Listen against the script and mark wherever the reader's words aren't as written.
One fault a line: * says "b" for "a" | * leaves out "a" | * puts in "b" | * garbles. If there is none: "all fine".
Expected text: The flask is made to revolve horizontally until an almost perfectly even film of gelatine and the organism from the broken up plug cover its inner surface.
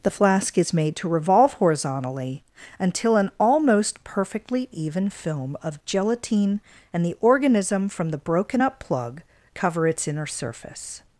all fine